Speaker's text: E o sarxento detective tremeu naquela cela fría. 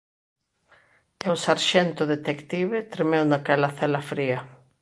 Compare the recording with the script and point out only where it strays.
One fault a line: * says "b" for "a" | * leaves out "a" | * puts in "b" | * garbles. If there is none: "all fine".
all fine